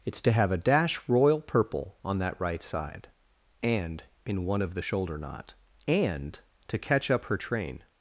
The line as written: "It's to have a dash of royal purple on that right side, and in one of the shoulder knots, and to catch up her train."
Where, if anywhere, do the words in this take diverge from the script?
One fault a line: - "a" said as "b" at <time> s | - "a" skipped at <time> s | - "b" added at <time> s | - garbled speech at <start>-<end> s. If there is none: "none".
- "of" skipped at 1.1 s
- "knots" said as "knot" at 5.2 s